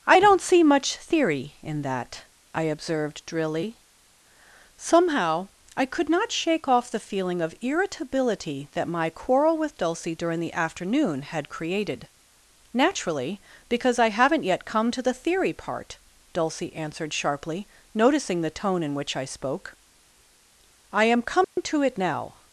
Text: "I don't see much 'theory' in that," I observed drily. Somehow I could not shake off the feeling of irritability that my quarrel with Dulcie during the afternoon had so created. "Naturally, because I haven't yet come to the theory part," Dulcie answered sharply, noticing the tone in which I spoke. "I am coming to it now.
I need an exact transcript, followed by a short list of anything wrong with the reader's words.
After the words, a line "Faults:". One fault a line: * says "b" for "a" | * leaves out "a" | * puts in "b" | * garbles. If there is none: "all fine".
"I don't see much 'theory' in that," I observed drily. Somehow I could not shake off the feeling of irritability that my quarrel with Dulcie during the afternoon had created. "Naturally, because I haven't yet come to the theory part," Dulcie answered sharply, noticing the tone in which I spoke. "I am coming to it now.
Faults:
* leaves out "so"